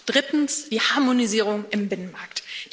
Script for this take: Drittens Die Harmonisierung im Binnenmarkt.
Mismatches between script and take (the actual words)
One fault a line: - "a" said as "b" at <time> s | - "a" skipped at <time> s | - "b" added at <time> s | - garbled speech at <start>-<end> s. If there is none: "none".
none